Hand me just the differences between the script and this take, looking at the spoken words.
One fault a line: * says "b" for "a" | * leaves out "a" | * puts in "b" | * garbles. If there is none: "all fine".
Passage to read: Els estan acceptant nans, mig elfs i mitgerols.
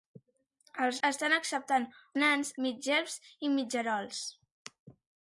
all fine